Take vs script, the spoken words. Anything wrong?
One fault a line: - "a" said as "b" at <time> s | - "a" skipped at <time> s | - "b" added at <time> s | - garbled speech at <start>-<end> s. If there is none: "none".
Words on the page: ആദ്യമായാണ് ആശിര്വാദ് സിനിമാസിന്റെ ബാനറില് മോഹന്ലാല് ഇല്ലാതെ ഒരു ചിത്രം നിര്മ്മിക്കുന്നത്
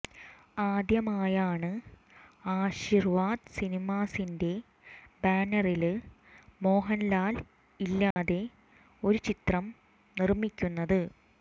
none